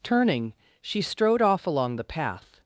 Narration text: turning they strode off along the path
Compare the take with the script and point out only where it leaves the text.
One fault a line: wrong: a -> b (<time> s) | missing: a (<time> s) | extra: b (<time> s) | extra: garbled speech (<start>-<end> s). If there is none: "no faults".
wrong: they -> she (0.8 s)